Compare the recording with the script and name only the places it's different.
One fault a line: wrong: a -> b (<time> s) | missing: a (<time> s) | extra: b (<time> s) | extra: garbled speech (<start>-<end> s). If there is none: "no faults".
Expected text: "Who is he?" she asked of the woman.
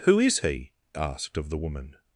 missing: she (0.7 s)